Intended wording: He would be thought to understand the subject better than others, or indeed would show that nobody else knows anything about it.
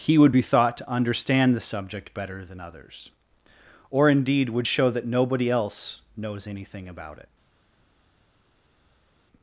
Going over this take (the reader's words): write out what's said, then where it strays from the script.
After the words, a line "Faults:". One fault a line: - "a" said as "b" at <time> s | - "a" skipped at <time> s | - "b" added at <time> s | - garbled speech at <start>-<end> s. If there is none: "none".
He would be thought to understand the subject better than others, or indeed would show that nobody else knows anything about it.
Faults:
none